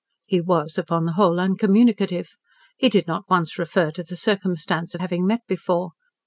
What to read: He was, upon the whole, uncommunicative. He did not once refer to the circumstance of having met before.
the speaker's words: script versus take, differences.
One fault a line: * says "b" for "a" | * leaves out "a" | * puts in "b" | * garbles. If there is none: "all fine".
all fine